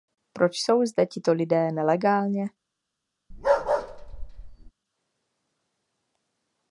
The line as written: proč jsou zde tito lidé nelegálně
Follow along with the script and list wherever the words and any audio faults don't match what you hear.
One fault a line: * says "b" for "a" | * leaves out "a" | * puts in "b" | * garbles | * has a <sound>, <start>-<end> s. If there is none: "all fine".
* has a bark, 3.3-4.7 s